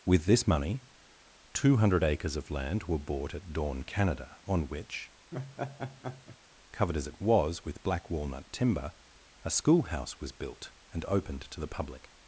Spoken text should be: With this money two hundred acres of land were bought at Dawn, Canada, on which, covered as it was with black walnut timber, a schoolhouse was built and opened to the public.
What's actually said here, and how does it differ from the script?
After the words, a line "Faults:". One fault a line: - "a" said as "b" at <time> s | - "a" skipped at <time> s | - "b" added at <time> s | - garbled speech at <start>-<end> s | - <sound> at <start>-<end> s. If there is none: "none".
With this money two hundred acres of land were bought at Dawn, Canada, on which, covered as it was with black walnut timber, a schoolhouse was built and opened to the public.
Faults:
- laugh at 5.3-6.4 s